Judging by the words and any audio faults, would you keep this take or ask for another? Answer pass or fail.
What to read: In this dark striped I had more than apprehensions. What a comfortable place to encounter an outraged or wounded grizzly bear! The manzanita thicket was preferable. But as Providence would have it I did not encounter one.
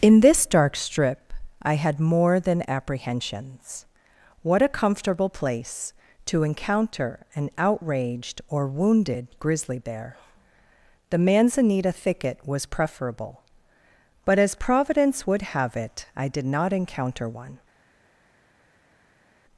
fail